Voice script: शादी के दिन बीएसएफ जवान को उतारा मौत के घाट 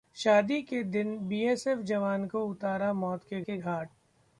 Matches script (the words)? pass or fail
fail